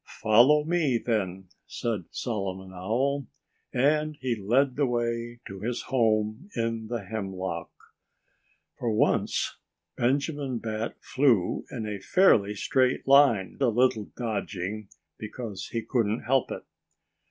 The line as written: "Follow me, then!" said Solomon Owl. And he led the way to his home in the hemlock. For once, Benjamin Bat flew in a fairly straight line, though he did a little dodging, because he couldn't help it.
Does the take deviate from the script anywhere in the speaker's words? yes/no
yes